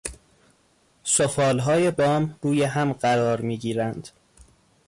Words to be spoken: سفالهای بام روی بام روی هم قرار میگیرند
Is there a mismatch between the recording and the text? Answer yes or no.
yes